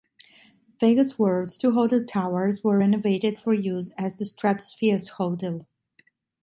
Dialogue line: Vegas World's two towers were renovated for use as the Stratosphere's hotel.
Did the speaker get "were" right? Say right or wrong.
right